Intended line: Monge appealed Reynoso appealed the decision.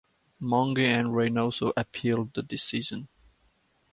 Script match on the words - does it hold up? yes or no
no